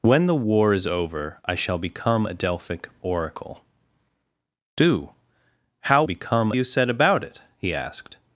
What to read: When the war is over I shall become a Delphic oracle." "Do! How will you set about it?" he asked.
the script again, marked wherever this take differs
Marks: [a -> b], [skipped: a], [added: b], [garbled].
When the war is over I shall become a Delphic oracle." "Do! How [will -> become] you set about it?" he asked.